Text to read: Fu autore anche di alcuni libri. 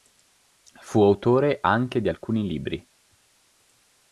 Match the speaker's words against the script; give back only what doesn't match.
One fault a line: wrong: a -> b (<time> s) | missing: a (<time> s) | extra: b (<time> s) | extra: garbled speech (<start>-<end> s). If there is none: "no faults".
no faults